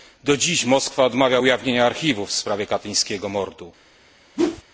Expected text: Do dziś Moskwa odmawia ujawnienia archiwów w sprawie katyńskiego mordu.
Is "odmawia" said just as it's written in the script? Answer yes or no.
yes